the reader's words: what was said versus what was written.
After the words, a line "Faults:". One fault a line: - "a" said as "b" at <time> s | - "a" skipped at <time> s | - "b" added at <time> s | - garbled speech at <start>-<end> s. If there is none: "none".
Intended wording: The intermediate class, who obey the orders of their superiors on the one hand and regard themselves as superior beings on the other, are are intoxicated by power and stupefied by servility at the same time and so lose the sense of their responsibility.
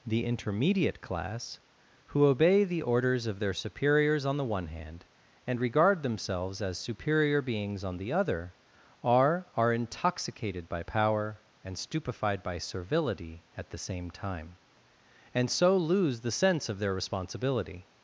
The intermediate class, who obey the orders of their superiors on the one hand and regard themselves as superior beings on the other, are are intoxicated by power and stupefied by servility at the same time and so lose the sense of their responsibility.
Faults:
none